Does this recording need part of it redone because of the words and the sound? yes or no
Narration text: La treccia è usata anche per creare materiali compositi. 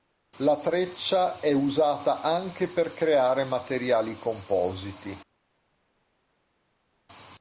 no